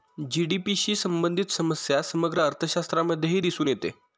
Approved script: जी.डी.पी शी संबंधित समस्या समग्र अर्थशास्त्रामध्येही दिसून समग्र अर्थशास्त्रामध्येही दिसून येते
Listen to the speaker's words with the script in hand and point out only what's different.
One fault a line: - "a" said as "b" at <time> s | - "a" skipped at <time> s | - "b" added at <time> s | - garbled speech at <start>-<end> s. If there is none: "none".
- "समग्र अर्थशास्त्रामध्येही दिसून" skipped at 3.7 s